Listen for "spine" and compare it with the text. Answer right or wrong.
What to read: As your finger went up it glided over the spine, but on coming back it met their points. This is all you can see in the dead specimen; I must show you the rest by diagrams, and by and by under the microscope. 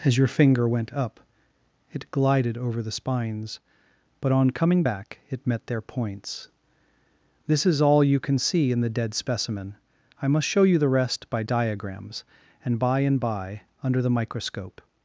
wrong